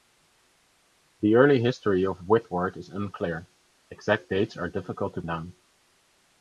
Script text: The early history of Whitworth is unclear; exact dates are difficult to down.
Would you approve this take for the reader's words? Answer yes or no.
yes